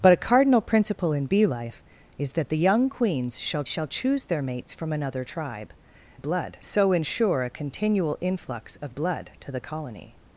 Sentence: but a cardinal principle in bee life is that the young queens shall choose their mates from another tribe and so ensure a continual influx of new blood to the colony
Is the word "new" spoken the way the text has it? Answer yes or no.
no